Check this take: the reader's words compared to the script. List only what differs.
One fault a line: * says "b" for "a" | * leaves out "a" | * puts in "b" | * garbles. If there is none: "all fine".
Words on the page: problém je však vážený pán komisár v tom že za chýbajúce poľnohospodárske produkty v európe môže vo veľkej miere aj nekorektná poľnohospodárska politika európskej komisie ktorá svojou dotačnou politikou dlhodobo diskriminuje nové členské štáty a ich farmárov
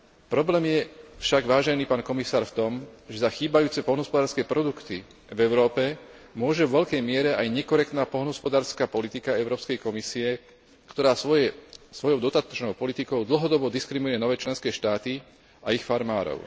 all fine